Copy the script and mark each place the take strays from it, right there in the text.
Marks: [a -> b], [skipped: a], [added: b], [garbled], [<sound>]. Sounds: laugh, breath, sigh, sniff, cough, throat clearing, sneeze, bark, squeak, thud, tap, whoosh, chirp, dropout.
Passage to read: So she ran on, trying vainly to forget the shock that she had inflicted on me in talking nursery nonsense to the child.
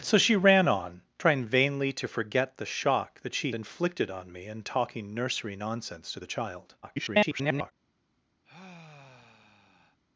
So she ran on, trying vainly to forget the shock that she [skipped: had] inflicted on me in talking nursery nonsense to the child. [garbled] [sigh]